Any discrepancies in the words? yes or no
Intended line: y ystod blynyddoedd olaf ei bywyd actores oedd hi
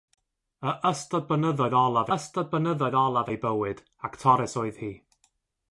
yes